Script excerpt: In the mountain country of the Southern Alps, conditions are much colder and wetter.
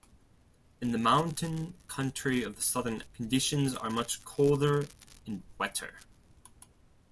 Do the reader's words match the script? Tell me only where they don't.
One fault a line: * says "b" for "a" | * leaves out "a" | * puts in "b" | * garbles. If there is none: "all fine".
* leaves out "Alps"